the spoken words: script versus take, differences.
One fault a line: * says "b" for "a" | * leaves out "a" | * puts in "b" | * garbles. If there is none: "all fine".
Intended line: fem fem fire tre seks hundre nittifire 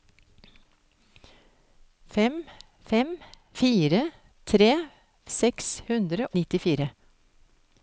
all fine